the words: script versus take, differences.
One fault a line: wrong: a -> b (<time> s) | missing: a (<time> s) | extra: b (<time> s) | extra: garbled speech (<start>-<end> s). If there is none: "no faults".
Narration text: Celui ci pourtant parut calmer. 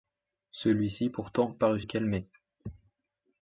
no faults